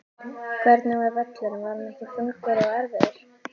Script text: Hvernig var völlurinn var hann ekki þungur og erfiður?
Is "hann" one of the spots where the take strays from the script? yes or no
no